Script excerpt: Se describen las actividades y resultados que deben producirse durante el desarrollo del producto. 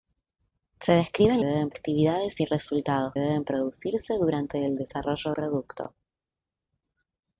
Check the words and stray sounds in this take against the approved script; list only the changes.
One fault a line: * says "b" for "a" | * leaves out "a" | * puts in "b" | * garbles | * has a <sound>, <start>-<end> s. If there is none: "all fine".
* says "deben" for "las"
* leaves out "que"
* leaves out "del"